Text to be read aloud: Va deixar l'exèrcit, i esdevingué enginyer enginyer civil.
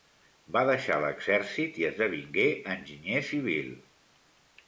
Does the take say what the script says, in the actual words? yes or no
no